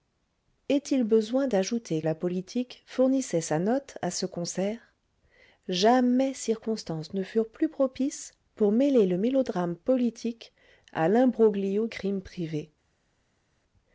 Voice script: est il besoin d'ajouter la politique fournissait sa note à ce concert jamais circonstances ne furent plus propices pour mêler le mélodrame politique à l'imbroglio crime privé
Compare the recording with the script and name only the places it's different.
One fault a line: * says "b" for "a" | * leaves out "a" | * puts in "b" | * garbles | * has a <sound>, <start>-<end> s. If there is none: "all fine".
all fine